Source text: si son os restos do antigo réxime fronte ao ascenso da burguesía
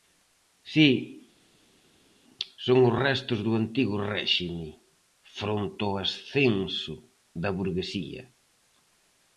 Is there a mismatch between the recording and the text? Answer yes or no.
no